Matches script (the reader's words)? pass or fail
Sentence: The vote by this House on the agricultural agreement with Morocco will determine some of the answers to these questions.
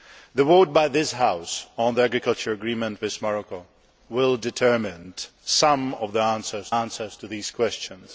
fail